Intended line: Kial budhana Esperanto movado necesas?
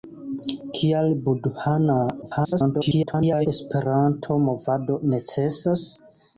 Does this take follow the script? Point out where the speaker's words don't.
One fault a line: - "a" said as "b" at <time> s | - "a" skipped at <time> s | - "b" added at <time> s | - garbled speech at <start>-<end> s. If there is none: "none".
- garbled speech at 2.2-3.5 s